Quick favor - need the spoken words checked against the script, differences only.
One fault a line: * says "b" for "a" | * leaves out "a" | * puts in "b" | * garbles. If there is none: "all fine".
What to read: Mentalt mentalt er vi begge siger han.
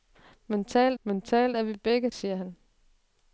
all fine